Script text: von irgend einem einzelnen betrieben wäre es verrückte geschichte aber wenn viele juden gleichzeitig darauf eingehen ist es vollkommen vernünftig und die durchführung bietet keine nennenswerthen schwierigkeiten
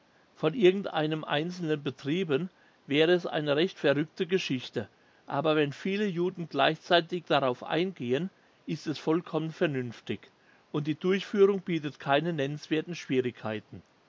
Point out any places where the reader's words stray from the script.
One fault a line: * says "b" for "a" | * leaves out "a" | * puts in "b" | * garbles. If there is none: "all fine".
* puts in "eine recht"